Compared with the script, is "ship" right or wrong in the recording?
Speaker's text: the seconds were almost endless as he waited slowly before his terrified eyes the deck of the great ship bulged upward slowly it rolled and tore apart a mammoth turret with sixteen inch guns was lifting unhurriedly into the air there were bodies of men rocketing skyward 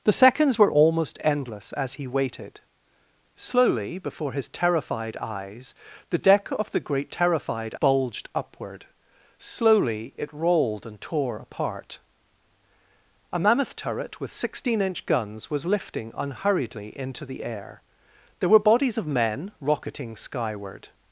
wrong